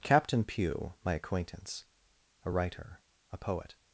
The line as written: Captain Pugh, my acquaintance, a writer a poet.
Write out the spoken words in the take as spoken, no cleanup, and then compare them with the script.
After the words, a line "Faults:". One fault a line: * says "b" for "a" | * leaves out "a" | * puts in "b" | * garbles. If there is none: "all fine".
Captain Pugh, my acquaintance, a writer a poet.
Faults:
all fine